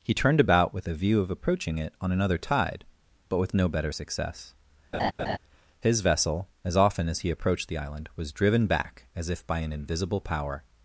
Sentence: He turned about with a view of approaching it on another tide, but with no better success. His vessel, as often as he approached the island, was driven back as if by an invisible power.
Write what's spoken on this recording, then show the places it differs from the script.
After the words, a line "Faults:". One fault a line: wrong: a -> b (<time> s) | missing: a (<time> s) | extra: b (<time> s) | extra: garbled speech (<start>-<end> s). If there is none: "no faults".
He turned about with a view of approaching it on another tide, but with no better success. His vessel, as often as he approached the island, was driven back as if by an invisible power.
Faults:
no faults